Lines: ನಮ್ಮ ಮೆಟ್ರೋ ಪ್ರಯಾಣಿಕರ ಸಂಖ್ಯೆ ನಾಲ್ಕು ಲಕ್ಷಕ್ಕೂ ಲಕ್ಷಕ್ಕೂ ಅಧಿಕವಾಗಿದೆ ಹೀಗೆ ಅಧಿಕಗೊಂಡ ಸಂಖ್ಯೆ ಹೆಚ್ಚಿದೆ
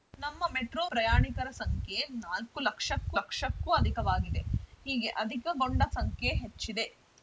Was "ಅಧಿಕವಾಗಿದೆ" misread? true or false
false